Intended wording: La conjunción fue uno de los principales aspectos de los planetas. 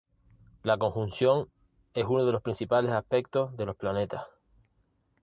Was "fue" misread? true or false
true